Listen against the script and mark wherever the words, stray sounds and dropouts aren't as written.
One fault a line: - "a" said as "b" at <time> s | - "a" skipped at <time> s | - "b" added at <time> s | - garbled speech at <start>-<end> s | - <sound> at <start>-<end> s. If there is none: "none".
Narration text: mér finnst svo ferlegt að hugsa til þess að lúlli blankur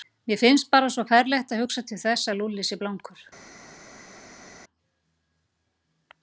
- "bara" added at 0.8 s
- "sé" added at 2.7 s